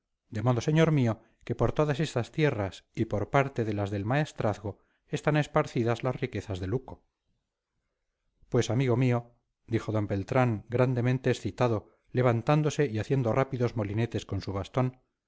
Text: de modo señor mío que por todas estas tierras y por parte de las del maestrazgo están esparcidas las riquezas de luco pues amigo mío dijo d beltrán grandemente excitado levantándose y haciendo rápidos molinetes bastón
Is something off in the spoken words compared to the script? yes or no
yes